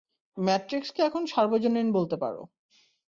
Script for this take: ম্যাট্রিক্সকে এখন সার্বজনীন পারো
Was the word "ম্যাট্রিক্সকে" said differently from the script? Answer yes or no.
no